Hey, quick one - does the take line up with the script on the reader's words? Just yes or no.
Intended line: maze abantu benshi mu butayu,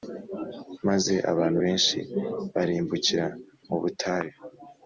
no